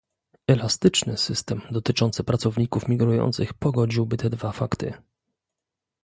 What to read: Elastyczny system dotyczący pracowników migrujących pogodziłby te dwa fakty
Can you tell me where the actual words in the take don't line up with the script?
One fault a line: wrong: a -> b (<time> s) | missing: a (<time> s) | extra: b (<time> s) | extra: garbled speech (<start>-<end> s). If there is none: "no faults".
no faults